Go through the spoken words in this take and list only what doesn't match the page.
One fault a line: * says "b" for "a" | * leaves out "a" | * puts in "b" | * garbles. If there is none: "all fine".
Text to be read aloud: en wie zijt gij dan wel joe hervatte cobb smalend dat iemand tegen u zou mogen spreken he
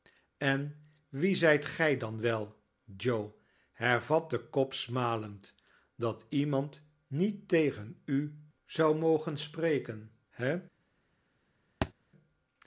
* puts in "niet"